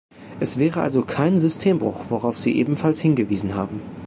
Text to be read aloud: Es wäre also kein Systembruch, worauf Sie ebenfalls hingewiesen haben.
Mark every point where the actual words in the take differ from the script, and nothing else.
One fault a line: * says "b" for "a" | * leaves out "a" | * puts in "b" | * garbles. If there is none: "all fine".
all fine